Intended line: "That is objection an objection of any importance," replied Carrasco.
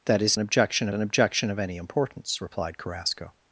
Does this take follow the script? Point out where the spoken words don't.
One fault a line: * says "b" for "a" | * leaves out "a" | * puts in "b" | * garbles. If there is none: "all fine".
all fine